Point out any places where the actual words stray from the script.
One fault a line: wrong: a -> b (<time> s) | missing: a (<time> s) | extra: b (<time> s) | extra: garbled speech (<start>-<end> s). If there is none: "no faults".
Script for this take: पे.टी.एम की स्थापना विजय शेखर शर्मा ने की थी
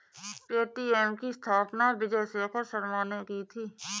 no faults